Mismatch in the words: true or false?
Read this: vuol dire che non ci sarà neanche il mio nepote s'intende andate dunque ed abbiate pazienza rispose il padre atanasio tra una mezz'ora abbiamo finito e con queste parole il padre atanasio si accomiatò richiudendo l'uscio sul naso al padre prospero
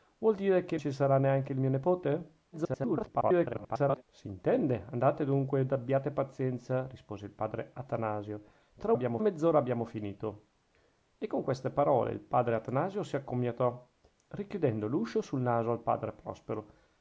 true